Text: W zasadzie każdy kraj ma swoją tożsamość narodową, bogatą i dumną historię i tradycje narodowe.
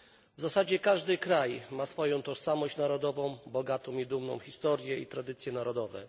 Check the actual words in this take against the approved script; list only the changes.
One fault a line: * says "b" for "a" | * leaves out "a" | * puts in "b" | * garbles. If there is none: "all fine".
all fine